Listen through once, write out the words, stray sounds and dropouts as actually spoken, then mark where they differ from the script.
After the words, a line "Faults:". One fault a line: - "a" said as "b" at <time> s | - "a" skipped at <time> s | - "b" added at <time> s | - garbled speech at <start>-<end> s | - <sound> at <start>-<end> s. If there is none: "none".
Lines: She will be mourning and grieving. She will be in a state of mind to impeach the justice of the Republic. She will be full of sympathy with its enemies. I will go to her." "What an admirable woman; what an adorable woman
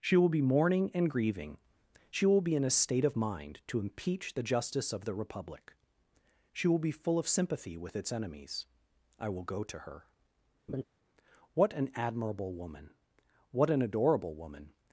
She will be mourning and grieving. She will be in a state of mind to impeach the justice of the Republic. She will be full of sympathy with its enemies. I will go to her." "What an admirable woman; what an adorable woman
Faults:
- laugh at 10.7-10.8 s